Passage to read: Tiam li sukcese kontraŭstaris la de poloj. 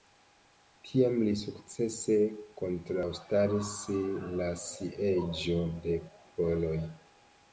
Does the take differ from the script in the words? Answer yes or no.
yes